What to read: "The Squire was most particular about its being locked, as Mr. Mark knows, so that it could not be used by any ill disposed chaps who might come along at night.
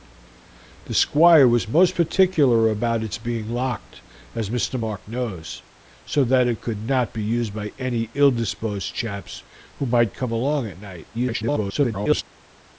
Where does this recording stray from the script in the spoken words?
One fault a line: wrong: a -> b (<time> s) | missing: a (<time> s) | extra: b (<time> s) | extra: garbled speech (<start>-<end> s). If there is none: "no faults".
extra: garbled speech (11.1-12.2 s)